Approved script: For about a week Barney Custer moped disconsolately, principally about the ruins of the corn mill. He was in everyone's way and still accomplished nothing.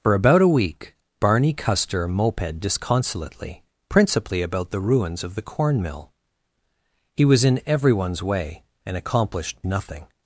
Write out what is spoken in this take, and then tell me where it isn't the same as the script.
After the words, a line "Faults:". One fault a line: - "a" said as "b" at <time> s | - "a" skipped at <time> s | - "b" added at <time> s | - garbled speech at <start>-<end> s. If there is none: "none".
For about a week Barney Custer moped disconsolately, principally about the ruins of the corn mill. He was in everyone's way and accomplished nothing.
Faults:
- "still" skipped at 9.0 s